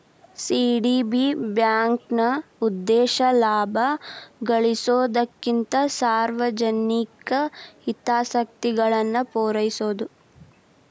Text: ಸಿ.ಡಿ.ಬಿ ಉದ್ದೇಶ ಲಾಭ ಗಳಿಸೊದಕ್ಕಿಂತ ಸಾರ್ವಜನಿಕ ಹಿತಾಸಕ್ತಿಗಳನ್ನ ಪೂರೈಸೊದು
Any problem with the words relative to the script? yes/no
yes